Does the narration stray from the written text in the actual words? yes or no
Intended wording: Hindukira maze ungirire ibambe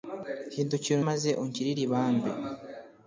no